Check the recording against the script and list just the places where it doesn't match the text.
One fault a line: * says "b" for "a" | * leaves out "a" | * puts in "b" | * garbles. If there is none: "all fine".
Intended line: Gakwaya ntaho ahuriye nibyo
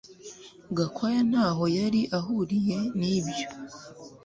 * puts in "yari"